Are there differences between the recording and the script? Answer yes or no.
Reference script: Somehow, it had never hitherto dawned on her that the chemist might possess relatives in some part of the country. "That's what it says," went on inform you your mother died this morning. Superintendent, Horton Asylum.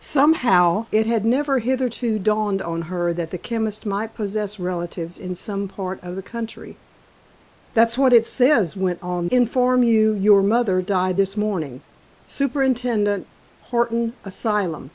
no